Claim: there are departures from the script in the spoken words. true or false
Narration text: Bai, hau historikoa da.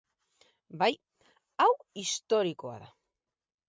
false